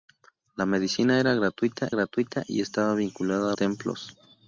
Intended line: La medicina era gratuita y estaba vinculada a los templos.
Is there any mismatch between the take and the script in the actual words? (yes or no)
yes